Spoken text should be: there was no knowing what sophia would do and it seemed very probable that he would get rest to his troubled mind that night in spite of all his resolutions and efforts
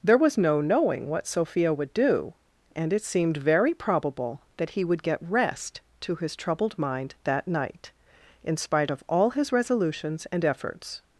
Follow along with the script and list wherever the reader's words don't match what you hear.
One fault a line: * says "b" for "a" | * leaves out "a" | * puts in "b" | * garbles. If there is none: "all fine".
all fine